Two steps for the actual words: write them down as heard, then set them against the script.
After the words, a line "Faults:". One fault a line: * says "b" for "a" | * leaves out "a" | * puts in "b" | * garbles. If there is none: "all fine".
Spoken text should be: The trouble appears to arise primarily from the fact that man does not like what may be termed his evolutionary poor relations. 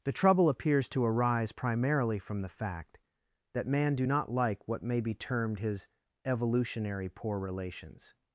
The trouble appears to arise primarily from the fact that man do not like what may be termed his evolutionary poor relations.
Faults:
* says "do" for "does"